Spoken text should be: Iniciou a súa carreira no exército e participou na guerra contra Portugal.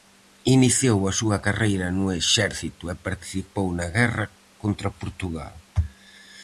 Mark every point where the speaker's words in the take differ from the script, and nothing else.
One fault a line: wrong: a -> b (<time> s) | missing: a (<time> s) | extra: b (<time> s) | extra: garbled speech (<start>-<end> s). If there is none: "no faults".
no faults